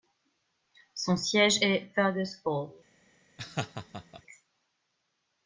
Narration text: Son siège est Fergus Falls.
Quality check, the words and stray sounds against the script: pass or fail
fail